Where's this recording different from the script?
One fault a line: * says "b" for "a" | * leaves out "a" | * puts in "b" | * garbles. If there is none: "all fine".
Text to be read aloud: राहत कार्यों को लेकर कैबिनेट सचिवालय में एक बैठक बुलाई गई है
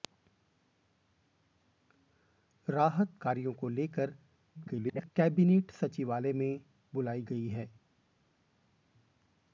* garbles
* leaves out "एक बैठक"